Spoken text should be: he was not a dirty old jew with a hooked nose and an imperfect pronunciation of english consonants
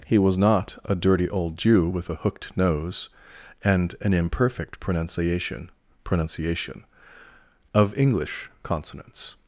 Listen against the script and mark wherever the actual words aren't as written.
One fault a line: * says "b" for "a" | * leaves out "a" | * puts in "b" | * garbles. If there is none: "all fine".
* puts in "pronunciation"